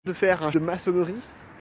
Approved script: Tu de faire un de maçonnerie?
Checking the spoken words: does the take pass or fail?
pass